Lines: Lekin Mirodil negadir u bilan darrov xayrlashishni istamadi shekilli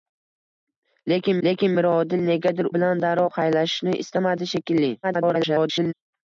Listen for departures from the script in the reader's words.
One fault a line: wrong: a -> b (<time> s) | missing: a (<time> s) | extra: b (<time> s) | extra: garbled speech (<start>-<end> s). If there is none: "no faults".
extra: lekin (1.5 s)
missing: u (2.7 s)
extra: garbled speech (5.0-5.9 s)